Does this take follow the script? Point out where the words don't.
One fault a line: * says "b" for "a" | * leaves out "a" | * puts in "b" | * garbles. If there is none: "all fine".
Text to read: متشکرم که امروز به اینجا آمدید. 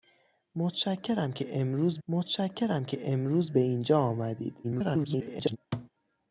* puts in "متشکرم که امروز"
* garbles